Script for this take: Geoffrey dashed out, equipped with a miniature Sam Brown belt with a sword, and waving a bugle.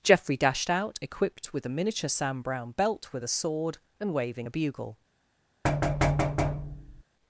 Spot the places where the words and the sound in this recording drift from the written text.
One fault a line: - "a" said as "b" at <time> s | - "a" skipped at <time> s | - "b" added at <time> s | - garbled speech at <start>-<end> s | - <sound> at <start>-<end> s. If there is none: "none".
- thud at 5.6-7.0 s